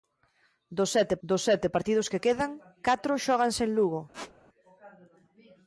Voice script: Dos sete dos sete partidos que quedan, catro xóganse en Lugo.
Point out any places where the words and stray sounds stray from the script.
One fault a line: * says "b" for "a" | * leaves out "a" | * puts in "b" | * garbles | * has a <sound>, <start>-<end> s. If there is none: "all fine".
* has a squeak, 4.1-4.3 s